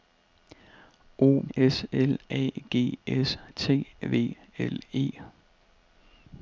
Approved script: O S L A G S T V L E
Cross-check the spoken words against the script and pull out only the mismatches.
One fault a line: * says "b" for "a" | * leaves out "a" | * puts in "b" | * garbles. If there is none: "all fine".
all fine